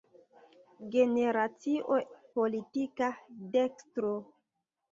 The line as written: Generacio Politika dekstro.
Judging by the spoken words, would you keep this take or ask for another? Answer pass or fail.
pass